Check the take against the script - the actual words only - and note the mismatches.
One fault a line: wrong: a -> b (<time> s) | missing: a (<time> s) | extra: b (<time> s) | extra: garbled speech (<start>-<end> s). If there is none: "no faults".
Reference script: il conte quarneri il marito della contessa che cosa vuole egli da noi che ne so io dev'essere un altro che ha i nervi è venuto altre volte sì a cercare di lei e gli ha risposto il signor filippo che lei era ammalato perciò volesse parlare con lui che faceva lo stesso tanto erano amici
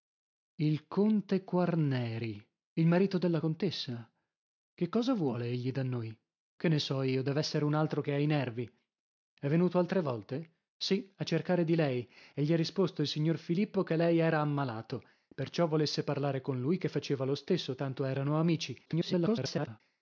extra: garbled speech (18.9-19.8 s)